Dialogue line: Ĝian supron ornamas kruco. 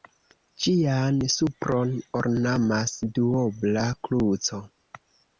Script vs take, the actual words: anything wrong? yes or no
yes